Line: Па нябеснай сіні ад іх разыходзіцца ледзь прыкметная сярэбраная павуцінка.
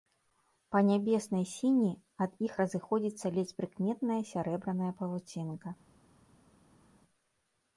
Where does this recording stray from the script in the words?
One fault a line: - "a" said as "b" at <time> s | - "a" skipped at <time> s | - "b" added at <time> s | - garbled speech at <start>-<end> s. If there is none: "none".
none